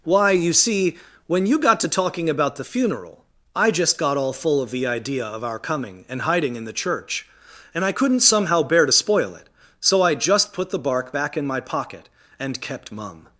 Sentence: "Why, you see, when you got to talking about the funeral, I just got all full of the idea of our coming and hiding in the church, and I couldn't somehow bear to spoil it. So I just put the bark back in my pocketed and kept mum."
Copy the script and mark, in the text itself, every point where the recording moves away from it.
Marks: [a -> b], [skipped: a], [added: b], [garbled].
"Why, you see, when you got to talking about the funeral, I just got all full of the idea of our coming and hiding in the church, and I couldn't somehow bear to spoil it. So I just put the bark back in my [pocketed -> pocket] and kept mum."